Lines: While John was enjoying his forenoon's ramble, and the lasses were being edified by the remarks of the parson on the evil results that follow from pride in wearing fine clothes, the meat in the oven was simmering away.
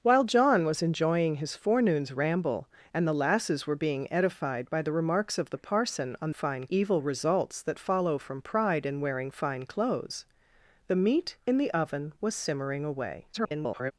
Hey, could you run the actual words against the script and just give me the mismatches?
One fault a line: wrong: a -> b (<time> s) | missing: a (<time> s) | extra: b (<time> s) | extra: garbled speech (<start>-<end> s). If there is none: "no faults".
wrong: the -> fine (6.3 s)
extra: garbled speech (13.3-13.9 s)